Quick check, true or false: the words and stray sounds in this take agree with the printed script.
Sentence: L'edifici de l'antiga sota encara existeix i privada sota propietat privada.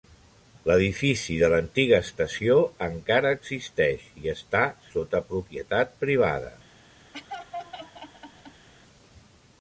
false